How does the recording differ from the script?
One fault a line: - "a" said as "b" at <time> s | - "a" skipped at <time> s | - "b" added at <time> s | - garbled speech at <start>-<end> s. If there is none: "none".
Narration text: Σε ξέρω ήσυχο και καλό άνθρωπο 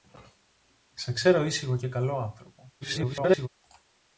- garbled speech at 2.8-3.5 s